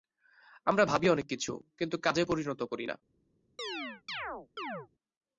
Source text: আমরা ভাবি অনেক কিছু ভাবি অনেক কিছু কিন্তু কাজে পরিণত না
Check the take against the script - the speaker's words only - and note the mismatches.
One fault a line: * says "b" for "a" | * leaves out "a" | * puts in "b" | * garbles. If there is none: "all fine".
* leaves out "ভাবি অনেক কিছু"
* puts in "করি"